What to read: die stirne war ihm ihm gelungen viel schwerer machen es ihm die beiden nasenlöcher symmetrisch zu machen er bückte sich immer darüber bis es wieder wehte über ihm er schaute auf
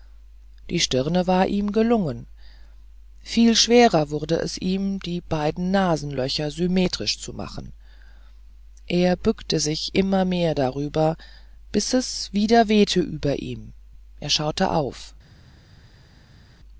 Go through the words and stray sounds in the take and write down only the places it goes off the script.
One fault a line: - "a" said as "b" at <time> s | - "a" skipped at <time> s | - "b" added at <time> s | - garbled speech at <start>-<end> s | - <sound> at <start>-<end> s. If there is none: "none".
- "ihm" skipped at 1.7 s
- "machen" said as "wurde" at 4.1 s
- "mehr" added at 10.2 s